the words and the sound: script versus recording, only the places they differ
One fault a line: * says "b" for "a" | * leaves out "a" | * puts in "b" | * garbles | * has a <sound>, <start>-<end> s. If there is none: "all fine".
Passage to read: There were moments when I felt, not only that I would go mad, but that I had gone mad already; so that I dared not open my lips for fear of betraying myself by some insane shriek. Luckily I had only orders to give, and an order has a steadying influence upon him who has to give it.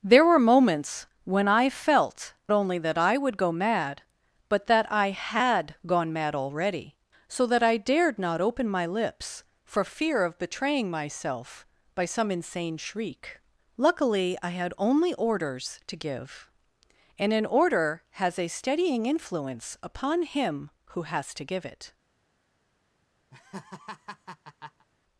* leaves out "not"
* has a laugh, 23.3-24.9 s